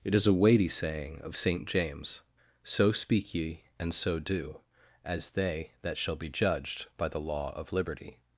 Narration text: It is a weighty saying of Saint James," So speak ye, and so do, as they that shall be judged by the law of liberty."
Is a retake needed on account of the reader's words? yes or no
no